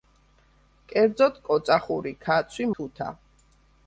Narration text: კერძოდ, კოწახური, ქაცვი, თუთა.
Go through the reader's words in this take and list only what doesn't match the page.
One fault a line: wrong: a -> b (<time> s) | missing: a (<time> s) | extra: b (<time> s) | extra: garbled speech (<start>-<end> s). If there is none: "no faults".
no faults